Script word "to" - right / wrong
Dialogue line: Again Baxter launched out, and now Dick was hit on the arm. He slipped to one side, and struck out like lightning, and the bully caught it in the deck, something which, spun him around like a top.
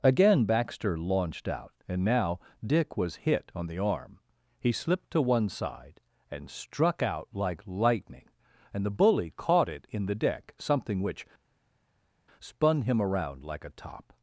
right